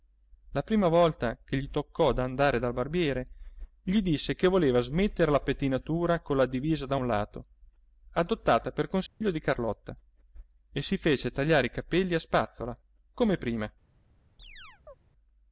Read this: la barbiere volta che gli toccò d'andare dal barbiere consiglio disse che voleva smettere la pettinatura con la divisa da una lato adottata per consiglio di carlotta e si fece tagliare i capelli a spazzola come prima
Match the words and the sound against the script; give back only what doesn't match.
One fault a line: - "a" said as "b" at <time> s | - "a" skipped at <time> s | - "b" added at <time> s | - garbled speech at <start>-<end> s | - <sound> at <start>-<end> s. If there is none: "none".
- "barbiere" said as "prima" at 0.6 s
- "consiglio" said as "gli" at 3.8 s
- "una" said as "un" at 6.9 s
- dropout at 9.1-9.2 s
- chirp at 14.4-14.9 s